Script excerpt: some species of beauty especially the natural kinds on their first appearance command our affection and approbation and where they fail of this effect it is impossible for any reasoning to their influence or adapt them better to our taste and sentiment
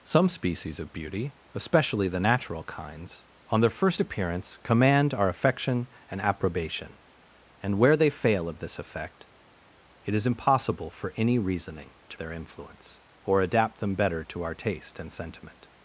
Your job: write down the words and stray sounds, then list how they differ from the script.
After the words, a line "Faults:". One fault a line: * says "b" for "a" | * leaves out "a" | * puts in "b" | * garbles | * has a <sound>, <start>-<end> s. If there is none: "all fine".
some species of beauty especially the natural kinds on their first appearance command our affection and approbation and where they fail of this effect it is impossible for any reasoning to their influence or adapt them better to our taste and sentiment
Faults:
all fine